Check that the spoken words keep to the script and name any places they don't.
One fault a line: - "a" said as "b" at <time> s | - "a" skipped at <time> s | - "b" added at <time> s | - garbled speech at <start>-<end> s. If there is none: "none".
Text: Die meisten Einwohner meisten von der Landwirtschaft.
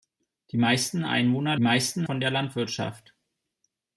none